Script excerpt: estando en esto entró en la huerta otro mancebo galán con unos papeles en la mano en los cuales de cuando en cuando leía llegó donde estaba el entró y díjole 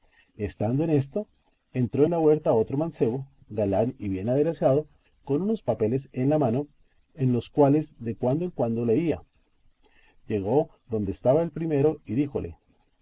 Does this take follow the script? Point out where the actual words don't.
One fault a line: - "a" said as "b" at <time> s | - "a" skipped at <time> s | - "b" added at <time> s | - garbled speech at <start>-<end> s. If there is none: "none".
- "y bien aderezado" added at 4.0 s
- "entró" said as "primero" at 11.5 s